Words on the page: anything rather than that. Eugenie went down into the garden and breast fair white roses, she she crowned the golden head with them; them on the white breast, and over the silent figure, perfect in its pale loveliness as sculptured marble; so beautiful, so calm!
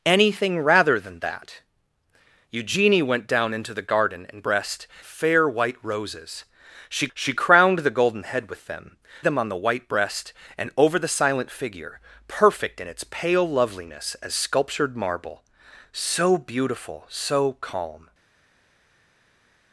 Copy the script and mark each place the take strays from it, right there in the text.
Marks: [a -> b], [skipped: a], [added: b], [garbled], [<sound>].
anything rather than that. Eugenie went down into the garden and breast fair white roses, she she crowned the golden head with them; them on the white breast, and over the silent figure, perfect in its pale loveliness as sculptured marble; so beautiful, so calm!